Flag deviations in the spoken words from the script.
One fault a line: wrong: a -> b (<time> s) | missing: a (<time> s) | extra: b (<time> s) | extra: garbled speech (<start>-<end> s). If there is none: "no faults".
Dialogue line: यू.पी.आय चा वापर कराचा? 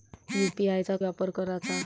no faults